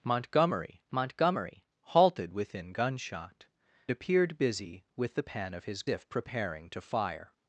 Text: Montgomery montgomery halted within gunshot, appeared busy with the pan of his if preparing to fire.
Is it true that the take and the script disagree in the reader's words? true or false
false